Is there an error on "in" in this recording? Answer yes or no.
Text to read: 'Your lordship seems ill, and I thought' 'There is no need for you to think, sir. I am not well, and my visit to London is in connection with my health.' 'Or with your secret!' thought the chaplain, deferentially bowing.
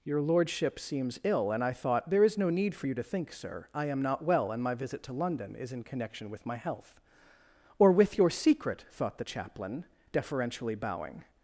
no